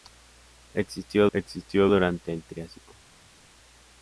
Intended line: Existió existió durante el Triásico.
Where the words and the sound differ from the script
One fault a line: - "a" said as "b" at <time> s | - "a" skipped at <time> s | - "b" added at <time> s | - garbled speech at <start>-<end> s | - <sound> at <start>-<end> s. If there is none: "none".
none